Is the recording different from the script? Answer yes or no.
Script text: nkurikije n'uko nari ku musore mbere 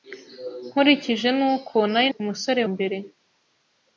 no